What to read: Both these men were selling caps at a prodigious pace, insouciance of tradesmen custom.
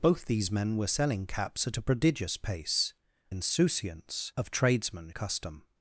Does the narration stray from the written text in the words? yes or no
no